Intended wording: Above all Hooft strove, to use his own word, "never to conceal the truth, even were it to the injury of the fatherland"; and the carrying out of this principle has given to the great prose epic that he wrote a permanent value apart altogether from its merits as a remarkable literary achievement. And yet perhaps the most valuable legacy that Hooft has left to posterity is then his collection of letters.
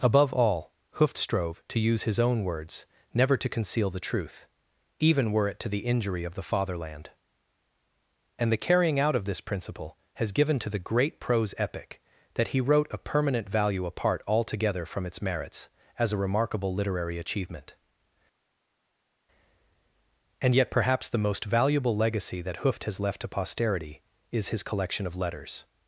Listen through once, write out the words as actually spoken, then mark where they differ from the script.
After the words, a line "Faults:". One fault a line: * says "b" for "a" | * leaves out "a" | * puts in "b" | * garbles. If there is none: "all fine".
Above all Hooft strove, to use his own words, "never to conceal the truth, even were it to the injury of the fatherland"; and the carrying out of this principle has given to the great prose epic that he wrote a permanent value apart altogether from its merits as a remarkable literary achievement. And yet perhaps the most valuable legacy that Hooft has left to posterity is his collection of letters.
Faults:
* says "words" for "word"
* leaves out "then"